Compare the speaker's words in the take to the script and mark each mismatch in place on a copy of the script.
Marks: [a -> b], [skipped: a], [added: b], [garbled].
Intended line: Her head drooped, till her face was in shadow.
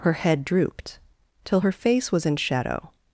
Her head drooped, till her face was in shadow.